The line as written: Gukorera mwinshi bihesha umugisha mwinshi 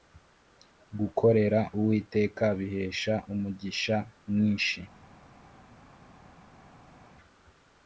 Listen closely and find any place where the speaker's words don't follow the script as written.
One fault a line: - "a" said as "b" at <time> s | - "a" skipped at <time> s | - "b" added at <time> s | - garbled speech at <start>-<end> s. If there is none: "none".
- "mwinshi" said as "uwiteka" at 1.8 s